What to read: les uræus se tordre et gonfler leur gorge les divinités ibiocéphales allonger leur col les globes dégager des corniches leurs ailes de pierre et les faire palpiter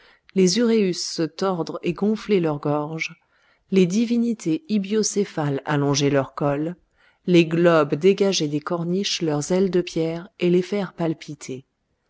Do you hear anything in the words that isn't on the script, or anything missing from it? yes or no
no